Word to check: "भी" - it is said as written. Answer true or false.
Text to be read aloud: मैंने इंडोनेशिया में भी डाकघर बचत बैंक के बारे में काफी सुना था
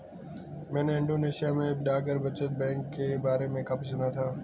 false